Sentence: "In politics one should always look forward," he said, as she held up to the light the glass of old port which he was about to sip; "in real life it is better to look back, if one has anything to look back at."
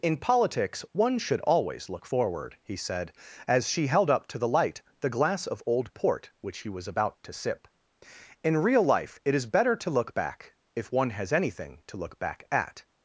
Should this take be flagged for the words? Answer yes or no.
no